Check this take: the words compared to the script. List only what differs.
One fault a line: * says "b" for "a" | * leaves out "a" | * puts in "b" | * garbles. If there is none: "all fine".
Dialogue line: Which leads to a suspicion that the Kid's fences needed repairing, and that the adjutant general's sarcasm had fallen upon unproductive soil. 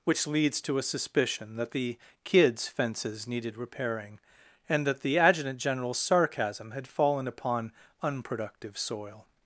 all fine